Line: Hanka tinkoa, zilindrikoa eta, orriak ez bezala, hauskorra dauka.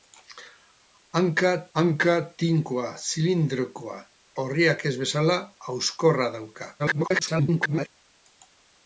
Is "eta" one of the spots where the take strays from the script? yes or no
yes